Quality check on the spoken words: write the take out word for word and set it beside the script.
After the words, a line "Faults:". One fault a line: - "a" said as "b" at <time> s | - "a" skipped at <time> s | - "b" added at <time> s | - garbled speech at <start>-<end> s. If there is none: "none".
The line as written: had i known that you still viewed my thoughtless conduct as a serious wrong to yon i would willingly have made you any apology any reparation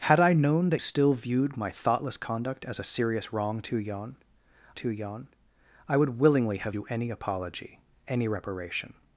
had i known that still viewed my thoughtless conduct as a serious wrong to yon to yon i would willingly have you any apology any reparation
Faults:
- "you" skipped at 0.8 s
- "to yon" added at 4.7 s
- "made" skipped at 6.7 s